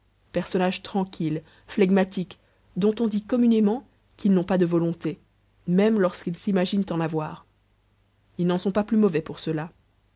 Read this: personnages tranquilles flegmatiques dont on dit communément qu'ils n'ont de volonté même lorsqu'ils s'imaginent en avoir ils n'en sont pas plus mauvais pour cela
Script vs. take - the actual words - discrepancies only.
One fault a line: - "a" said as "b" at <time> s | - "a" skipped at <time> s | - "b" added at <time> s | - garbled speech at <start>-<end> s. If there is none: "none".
- "pas" added at 4.4 s